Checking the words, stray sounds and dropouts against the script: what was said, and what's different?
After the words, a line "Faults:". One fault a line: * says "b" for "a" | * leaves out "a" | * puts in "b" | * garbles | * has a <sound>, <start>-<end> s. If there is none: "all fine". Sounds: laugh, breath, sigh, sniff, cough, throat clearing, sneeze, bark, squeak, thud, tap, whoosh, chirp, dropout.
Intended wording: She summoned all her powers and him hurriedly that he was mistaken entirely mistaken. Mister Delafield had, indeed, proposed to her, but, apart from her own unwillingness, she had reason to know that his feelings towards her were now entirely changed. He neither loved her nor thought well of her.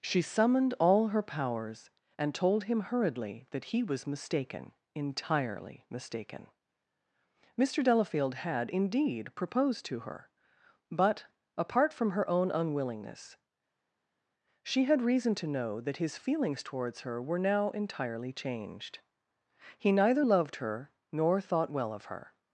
She summoned all her powers and told him hurriedly that he was mistaken entirely mistaken. Mister Delafield had, indeed, proposed to her, but, apart from her own unwillingness, she had reason to know that his feelings towards her were now entirely changed. He neither loved her nor thought well of her.
Faults:
* puts in "told"